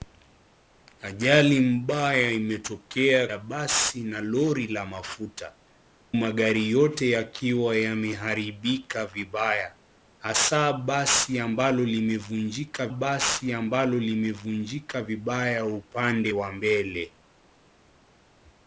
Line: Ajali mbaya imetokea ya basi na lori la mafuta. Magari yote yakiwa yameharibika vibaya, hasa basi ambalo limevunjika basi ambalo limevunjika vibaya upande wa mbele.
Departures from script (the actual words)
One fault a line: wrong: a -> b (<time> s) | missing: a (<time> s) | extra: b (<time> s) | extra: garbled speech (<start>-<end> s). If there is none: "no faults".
no faults